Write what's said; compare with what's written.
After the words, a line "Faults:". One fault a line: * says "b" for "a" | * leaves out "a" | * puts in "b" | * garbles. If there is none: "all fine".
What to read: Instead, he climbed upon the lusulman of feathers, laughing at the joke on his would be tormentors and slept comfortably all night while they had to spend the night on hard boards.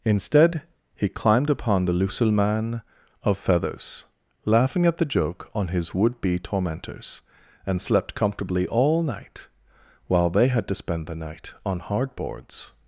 Instead, he climbed upon the lusulman of feathers, laughing at the joke on his would be tormentors and slept comfortably all night while they had to spend the night on hard boards.
Faults:
all fine